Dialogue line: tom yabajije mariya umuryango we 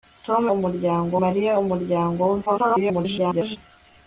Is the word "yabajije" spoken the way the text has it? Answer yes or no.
no